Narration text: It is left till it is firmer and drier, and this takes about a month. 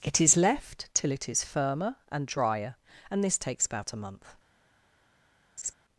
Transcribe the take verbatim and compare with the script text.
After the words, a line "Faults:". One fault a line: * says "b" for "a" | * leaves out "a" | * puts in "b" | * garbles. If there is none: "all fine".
It is left till it is firmer and drier, and this takes about a month.
Faults:
all fine